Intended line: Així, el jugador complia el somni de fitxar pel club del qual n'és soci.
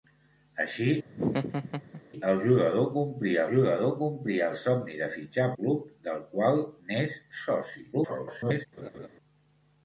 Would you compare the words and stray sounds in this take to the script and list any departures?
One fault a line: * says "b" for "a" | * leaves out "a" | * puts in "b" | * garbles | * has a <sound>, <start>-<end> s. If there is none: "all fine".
* has a laugh, 1.0-2.0 s
* puts in "jugador complia"
* leaves out "pel"
* garbles
* has a laugh, 8.8-9.1 s